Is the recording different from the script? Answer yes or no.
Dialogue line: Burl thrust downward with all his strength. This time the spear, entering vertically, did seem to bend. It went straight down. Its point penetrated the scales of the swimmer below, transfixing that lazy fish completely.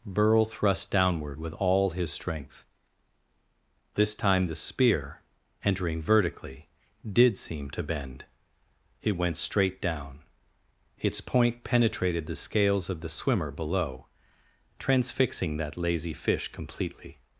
no